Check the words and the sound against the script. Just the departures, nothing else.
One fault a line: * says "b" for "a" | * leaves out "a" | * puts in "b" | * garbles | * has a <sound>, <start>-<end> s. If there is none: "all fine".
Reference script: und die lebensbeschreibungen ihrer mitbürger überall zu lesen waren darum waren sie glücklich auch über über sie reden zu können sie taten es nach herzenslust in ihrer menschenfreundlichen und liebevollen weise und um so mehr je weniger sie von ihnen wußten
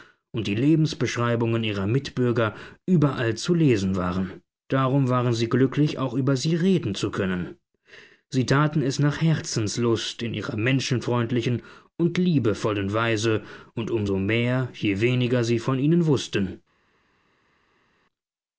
* leaves out "über"